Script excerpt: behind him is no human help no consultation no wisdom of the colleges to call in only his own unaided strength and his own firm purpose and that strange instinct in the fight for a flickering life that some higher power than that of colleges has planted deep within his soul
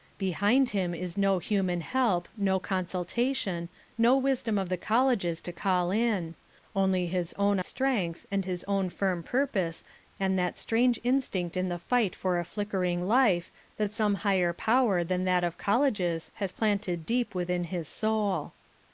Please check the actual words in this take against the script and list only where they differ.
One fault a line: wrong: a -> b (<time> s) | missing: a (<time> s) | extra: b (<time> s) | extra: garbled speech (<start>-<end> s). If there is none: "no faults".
missing: unaided (7.6 s)